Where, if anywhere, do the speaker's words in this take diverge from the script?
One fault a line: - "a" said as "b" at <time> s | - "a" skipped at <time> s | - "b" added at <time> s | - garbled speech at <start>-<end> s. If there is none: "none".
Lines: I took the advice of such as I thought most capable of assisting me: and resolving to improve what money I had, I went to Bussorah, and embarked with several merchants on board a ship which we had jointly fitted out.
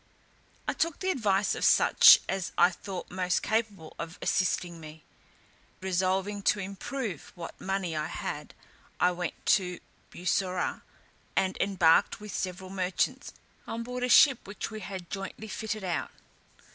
- "and" skipped at 5.0 s